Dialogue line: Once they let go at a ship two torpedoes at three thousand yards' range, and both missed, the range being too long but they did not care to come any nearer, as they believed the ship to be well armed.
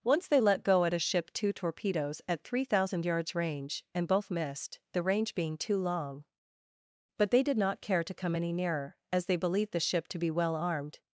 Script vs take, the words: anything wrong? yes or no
no